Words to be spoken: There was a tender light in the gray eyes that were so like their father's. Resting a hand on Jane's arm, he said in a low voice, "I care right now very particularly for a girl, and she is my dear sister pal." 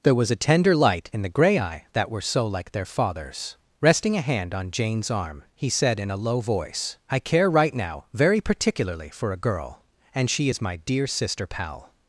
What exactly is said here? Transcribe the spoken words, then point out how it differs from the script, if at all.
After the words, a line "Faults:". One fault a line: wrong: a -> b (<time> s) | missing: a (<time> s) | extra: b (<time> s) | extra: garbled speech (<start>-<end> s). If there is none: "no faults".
There was a tender light in the gray eye that were so like their father's. Resting a hand on Jane's arm, he said in a low voice, "I care right now very particularly for a girl, and she is my dear sister pal."
Faults:
wrong: eyes -> eye (1.6 s)